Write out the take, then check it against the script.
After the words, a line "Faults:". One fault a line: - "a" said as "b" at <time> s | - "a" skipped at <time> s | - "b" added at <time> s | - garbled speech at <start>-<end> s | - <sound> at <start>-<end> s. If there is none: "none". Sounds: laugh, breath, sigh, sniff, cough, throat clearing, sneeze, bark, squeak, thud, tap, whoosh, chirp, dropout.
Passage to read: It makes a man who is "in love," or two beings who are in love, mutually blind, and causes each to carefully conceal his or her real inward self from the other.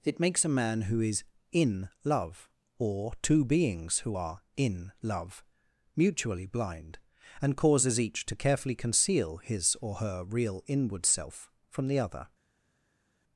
It makes a man who is "in love," or two beings who are in love, mutually blind, and causes each to carefully conceal his or her real inward self from the other.
Faults:
none